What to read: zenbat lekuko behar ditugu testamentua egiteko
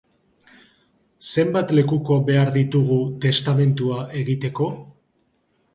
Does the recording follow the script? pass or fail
pass